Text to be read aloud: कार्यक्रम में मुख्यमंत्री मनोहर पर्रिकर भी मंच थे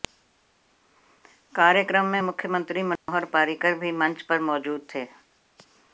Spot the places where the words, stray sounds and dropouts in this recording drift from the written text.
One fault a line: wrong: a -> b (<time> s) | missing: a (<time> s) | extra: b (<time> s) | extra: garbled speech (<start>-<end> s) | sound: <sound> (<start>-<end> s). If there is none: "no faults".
sound: dropout (3.0-3.1 s)
extra: पर मौजूद (4.2 s)